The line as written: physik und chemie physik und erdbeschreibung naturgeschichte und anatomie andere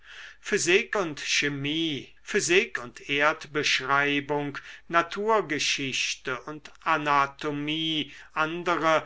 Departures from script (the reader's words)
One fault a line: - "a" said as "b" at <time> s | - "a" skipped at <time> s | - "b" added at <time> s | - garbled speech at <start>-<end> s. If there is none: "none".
none